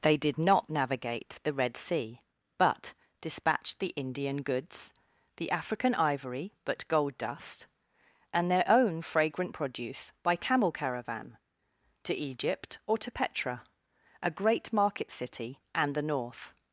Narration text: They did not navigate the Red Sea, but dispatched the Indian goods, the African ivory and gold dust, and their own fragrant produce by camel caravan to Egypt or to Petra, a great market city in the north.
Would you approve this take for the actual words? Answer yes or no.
no